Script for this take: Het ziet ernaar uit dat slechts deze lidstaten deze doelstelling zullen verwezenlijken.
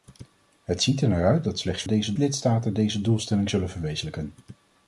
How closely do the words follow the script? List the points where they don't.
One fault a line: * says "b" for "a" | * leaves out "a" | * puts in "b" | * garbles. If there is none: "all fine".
all fine